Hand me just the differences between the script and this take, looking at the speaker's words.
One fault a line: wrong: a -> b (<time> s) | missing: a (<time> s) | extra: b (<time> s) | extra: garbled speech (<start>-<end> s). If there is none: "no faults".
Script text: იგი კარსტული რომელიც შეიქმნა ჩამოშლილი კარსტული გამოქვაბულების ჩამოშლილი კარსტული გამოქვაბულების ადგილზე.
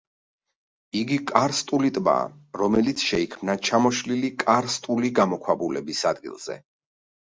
extra: ტბაა (2.0 s)
missing: ჩამოშლილი კარსტული გამოქვაბულების (6.1 s)